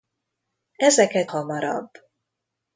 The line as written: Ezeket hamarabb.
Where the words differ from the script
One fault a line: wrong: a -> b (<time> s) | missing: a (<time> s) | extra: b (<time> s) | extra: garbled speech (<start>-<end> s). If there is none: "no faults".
no faults